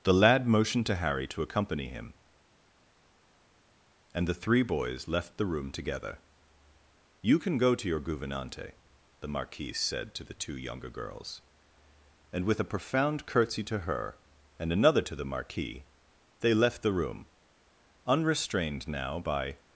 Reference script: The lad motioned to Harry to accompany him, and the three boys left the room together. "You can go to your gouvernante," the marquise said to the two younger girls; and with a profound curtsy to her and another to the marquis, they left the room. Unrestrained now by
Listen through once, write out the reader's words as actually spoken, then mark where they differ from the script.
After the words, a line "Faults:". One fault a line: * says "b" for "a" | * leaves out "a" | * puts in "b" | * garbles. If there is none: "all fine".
The lad motioned to Harry to accompany him, and the three boys left the room together. "You can go to your gouvernante," the marquise said to the two younger girls; and with a profound curtsy to her and another to the marquis, they left the room. Unrestrained now by
Faults:
all fine